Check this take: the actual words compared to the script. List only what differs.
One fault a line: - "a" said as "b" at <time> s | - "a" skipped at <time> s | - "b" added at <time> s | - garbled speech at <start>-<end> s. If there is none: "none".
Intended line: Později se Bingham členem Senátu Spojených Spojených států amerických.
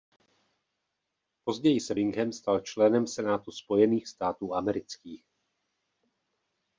- "stal" added at 2.3 s
- "Spojených" skipped at 4.1 s